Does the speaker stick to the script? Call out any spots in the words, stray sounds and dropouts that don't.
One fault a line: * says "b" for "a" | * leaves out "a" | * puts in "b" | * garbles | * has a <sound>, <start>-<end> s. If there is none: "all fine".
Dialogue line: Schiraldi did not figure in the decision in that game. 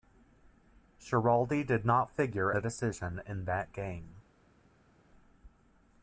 * leaves out "in"